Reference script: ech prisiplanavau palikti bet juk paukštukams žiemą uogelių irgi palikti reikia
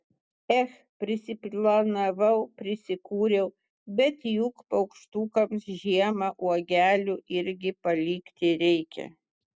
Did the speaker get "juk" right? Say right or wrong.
right